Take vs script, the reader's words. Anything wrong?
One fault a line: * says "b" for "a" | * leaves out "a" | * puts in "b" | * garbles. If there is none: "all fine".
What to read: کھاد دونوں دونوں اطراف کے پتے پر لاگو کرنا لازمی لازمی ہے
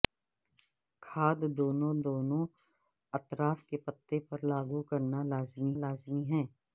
all fine